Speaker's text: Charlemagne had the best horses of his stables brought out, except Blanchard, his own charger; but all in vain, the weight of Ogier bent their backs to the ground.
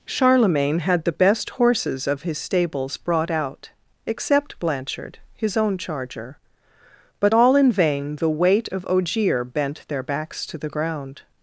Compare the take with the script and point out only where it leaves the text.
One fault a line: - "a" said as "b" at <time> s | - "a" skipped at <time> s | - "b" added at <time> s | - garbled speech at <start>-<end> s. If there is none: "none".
none